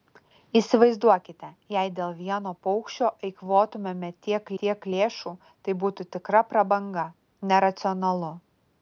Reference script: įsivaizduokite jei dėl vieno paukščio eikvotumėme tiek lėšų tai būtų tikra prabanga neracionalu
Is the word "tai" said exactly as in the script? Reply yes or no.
yes